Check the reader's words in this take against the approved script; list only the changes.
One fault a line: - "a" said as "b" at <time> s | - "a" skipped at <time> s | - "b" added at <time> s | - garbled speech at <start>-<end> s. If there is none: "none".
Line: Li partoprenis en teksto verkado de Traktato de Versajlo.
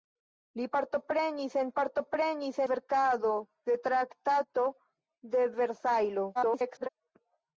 - "teksto" said as "partoprenis" at 1.8 s
- garbled speech at 6.3-6.9 s